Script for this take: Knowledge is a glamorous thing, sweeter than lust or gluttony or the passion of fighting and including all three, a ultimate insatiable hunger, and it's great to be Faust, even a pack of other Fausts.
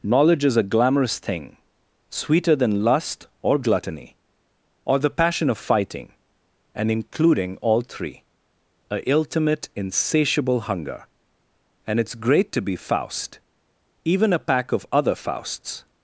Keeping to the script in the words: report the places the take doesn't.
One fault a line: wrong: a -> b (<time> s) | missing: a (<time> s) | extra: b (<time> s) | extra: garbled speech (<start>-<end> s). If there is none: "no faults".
no faults